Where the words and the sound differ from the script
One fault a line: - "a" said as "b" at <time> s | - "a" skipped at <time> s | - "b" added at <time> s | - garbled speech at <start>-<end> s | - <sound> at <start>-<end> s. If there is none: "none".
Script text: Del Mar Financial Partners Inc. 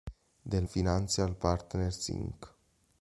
- "Mar" skipped at 0.7 s